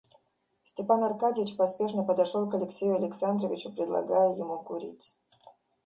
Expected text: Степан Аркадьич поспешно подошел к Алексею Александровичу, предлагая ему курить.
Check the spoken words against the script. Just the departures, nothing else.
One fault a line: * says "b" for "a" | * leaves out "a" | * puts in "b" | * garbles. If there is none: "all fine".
all fine